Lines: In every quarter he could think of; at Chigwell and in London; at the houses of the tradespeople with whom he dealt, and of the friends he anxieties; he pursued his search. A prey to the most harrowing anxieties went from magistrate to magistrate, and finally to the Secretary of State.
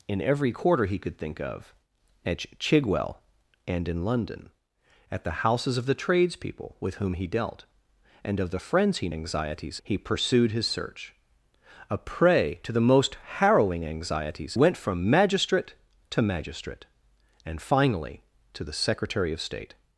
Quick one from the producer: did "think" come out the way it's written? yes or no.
yes